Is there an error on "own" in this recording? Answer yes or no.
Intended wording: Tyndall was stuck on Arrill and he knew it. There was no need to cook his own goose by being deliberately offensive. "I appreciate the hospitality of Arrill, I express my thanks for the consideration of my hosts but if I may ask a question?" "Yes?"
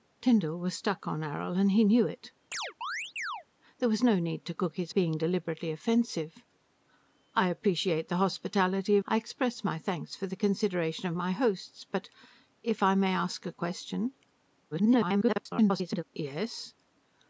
yes